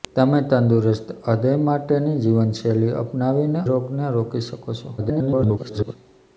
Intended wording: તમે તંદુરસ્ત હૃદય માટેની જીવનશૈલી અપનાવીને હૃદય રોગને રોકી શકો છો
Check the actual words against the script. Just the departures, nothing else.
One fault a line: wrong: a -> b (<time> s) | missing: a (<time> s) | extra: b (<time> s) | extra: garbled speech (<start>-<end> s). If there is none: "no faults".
missing: હૃદય (3.6 s)
extra: garbled speech (5.0-6.0 s)